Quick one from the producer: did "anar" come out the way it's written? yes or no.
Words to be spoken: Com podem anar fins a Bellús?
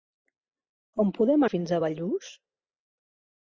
no